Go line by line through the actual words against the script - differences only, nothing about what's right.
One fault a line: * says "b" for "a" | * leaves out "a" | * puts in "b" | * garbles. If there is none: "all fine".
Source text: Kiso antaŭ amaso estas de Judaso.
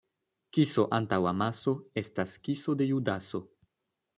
* puts in "kiso"